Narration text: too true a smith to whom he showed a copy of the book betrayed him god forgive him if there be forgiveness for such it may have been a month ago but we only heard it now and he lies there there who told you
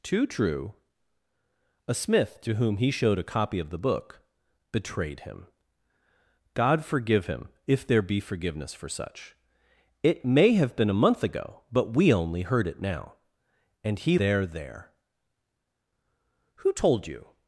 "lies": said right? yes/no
no